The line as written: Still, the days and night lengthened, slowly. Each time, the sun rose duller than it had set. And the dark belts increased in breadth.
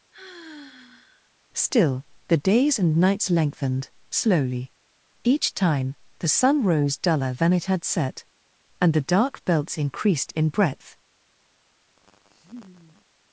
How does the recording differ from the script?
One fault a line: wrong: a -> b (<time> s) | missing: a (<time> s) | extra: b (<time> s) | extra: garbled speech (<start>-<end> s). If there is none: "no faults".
wrong: night -> nights (3.0 s)